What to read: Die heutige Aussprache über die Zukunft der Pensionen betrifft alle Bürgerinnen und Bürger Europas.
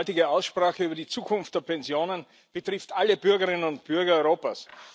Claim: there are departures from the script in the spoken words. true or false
false